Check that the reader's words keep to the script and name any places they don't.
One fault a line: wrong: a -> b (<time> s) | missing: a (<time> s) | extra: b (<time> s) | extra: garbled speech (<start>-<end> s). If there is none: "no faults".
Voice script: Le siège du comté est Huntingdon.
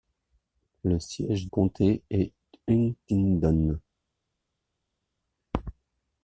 missing: du (1.5 s)